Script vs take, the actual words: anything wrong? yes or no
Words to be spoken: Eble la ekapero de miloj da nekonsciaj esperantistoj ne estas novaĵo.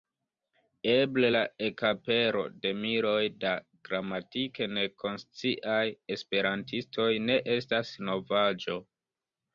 yes